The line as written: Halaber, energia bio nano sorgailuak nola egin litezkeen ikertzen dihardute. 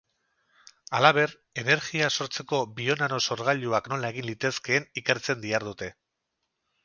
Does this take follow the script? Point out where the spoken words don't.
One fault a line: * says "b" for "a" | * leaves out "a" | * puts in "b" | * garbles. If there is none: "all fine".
* puts in "sortzeko"